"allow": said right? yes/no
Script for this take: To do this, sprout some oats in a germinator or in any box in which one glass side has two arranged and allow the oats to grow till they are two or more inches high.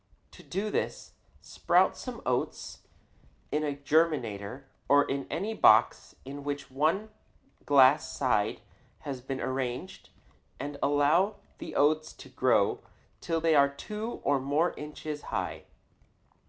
yes